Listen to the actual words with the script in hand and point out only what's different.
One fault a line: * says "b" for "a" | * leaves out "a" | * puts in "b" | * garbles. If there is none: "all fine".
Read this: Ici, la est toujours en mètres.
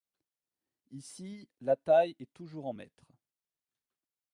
* puts in "taille"